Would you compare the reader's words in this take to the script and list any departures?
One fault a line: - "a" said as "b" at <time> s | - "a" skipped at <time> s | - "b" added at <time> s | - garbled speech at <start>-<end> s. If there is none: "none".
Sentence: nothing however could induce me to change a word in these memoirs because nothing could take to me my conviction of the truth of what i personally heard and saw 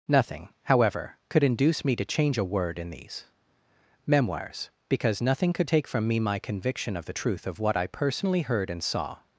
- "to" said as "from" at 5.9 s